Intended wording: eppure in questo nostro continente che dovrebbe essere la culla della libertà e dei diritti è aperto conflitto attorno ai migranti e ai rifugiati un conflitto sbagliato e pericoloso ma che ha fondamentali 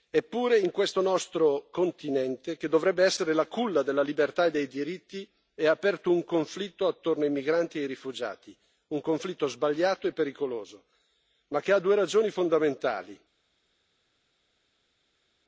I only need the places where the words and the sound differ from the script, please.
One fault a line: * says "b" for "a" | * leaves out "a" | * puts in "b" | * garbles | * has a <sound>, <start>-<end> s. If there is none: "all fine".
* puts in "un"
* puts in "due ragioni"